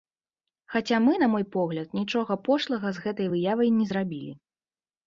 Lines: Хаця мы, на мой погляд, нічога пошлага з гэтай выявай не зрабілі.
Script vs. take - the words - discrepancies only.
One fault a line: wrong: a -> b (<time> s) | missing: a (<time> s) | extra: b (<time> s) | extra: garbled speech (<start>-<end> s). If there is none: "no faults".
no faults